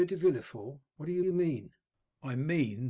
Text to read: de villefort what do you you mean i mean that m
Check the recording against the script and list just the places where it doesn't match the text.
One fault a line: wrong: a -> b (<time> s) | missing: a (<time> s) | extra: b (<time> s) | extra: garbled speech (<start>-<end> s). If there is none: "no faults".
no faults